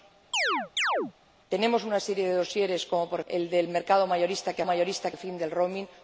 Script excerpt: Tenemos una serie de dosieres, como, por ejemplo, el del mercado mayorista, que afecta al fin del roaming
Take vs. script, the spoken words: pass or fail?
fail